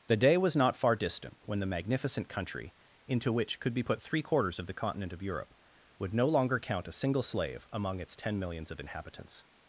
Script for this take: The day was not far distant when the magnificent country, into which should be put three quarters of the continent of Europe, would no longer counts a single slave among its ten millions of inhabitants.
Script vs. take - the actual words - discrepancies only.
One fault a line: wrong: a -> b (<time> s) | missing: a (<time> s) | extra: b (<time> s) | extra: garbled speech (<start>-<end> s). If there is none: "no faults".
wrong: should -> could (3.6 s)
wrong: counts -> count (6.6 s)